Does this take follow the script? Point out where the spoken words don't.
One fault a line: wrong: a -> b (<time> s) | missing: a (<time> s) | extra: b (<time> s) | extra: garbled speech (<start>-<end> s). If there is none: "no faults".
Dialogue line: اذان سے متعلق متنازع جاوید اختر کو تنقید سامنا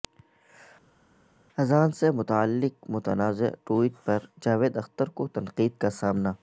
extra: ٹوئٹ پر (3.6 s)
extra: کا (5.8 s)